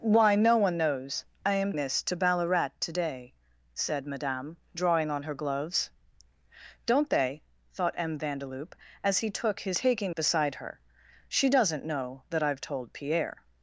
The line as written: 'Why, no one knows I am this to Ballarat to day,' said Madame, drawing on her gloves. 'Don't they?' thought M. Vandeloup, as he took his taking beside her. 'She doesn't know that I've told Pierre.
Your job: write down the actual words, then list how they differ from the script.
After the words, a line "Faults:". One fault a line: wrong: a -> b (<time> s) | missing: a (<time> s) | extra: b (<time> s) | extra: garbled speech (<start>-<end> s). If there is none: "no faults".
'Why, no one knows I am this to Ballarat to day,' said Madame, drawing on her gloves. 'Don't they?' thought M. Vandeloup, as he took his taking beside her. 'She doesn't know that I've told Pierre.
Faults:
no faults